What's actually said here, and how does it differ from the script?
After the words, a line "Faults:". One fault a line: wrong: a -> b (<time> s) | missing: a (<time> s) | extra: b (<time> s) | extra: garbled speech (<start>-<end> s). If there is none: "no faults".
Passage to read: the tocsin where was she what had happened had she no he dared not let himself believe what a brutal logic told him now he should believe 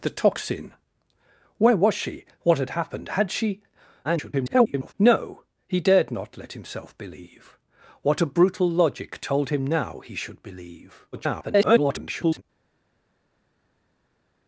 the tocsin where was she what had happened had she [garbled] no he dared not let himself believe what a brutal logic told him now he should believe [garbled]
Faults:
extra: garbled speech (4.0-4.9 s)
extra: garbled speech (11.1-12.4 s)